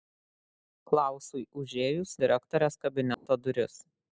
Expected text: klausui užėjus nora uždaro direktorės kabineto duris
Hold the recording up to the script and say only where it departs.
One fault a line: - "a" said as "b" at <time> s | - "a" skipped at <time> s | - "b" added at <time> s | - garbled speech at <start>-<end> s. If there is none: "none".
- "nora uždaro" skipped at 2.1 s